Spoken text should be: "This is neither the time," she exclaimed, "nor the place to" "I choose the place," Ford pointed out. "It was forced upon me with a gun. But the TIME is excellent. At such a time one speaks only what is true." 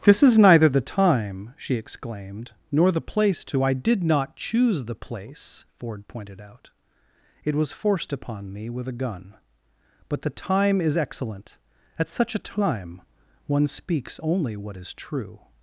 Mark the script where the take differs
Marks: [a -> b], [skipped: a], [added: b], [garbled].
"This is neither the time," she exclaimed, "nor the place to" "I [added: did not] choose the place," Ford pointed out. "It was forced upon me with a gun. But the TIME is excellent. At such a time one speaks only what is true."